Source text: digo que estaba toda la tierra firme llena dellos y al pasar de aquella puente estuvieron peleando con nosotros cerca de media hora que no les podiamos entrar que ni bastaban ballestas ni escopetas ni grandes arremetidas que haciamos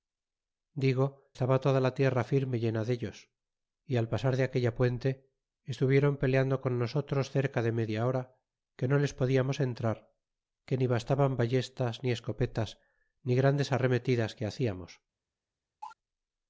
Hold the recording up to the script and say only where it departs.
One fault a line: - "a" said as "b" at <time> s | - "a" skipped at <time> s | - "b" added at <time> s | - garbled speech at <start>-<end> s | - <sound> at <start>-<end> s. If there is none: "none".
- "que" skipped at 1.1 s
- cough at 15.8-16.0 s